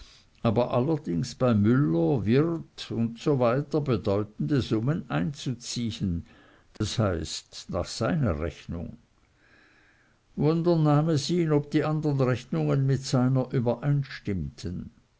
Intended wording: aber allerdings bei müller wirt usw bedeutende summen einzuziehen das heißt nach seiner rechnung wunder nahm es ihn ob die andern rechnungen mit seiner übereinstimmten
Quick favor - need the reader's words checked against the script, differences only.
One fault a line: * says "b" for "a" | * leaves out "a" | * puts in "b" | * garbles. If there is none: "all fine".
all fine